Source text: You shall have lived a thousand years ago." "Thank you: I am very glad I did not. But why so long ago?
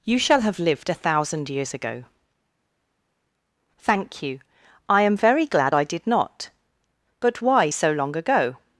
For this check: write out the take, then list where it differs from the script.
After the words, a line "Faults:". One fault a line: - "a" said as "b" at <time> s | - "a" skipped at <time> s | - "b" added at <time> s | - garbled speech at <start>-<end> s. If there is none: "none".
You shall have lived a thousand years ago." "Thank you: I am very glad I did not. But why so long ago?
Faults:
none